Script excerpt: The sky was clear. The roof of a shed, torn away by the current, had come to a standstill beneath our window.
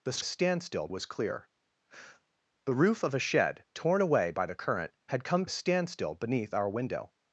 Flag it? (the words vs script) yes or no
yes